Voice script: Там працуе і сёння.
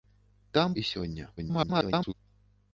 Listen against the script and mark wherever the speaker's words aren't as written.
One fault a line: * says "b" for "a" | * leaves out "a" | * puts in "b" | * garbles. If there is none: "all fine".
* leaves out "працуе"
* garbles